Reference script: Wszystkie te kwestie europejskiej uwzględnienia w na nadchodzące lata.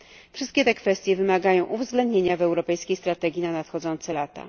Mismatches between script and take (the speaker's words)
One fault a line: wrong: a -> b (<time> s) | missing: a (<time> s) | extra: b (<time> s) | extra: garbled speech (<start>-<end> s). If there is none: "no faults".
wrong: europejskiej -> wymagają (1.2 s)
extra: europejskiej strategii (2.4 s)